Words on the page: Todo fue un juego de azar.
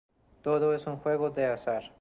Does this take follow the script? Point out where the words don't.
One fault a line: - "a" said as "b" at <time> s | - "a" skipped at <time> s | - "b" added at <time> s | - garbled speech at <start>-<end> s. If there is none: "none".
- "fue" said as "es" at 0.7 s